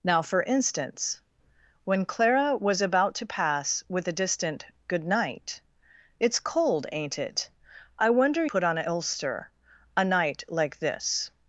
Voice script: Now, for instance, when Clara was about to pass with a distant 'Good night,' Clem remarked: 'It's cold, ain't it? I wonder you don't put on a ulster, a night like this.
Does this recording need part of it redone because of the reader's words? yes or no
yes